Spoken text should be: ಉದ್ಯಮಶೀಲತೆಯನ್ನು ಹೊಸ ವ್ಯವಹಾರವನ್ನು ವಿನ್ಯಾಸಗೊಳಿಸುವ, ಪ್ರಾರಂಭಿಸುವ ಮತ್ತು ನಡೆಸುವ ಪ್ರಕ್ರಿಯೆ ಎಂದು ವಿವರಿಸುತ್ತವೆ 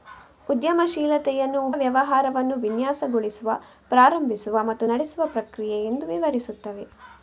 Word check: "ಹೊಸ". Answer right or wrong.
wrong